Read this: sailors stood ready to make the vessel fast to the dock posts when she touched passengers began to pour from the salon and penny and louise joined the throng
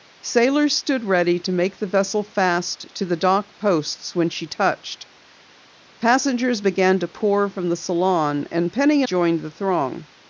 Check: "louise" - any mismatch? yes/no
yes